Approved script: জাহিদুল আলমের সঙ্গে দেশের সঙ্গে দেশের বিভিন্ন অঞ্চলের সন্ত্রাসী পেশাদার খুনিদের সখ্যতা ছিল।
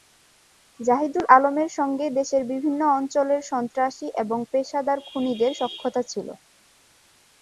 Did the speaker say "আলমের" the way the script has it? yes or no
yes